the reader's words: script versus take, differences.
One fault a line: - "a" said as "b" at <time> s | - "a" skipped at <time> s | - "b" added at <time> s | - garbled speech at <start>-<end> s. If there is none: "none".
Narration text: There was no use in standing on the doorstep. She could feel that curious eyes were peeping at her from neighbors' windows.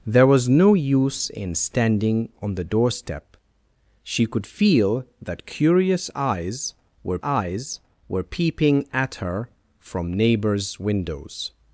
- "eyes were" added at 7.2 s